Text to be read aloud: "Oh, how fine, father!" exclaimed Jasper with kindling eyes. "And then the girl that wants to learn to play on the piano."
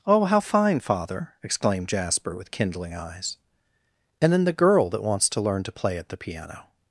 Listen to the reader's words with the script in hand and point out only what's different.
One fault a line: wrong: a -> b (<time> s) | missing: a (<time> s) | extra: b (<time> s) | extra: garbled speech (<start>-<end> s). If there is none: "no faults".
wrong: on -> at (6.0 s)